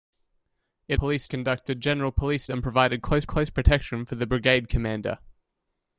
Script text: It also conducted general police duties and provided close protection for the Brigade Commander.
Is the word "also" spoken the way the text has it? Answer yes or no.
no